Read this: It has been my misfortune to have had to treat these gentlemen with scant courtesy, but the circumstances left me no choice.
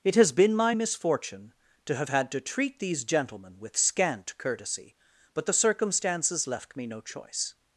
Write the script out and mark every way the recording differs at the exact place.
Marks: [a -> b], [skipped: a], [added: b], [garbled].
It has been my misfortune to have had to treat these gentlemen with scant courtesy, but the circumstances left me no choice.